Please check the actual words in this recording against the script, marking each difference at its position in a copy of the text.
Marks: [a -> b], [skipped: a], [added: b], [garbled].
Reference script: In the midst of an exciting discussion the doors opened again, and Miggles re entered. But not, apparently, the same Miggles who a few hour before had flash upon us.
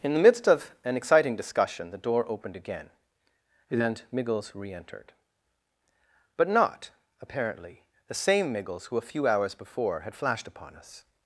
In the midst of an exciting discussion the [doors -> door] opened again, and Miggles re entered. But not, apparently, the same Miggles who a few [hour -> hours] before had [flash -> flashed] upon us.